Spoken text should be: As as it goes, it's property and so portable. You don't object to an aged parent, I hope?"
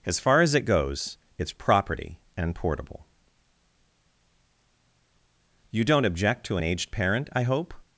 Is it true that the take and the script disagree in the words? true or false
true